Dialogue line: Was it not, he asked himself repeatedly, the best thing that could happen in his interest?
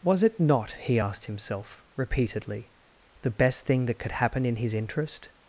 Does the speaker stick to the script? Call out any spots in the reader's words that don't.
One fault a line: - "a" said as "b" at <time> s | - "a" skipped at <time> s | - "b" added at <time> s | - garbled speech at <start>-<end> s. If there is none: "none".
none